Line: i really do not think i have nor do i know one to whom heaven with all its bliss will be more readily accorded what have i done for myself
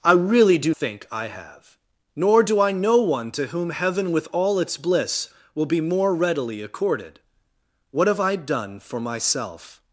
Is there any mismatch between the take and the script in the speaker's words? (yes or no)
yes